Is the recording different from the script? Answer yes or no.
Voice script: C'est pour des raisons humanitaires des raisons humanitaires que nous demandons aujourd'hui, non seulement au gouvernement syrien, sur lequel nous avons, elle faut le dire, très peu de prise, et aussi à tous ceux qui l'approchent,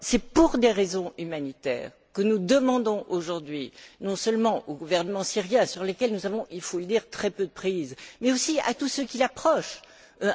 yes